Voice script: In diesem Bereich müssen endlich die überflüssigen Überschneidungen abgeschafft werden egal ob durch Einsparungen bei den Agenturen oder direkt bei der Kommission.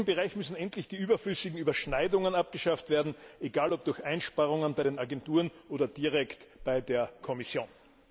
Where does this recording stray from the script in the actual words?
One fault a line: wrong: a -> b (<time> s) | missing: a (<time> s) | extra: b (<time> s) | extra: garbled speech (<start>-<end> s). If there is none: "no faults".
no faults